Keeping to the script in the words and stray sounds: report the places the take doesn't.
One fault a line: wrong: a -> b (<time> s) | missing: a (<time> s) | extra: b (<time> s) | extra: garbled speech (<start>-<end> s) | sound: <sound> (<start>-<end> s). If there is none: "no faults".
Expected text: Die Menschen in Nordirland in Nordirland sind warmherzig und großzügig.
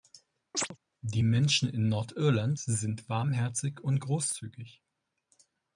sound: chirp (0.5-0.8 s)
missing: in Nordirland (2.6 s)